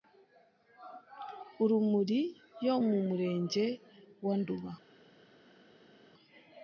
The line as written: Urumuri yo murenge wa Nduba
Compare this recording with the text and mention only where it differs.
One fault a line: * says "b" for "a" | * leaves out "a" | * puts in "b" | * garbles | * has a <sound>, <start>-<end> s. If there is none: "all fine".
* puts in "mu"